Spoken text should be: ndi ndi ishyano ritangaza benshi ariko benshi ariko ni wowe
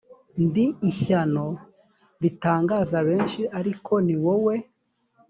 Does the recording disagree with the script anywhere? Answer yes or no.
yes